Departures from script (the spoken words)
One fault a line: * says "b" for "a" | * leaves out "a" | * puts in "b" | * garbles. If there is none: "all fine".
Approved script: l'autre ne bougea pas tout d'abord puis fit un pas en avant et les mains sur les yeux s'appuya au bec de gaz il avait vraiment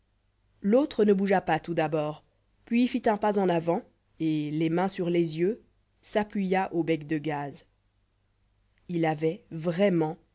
all fine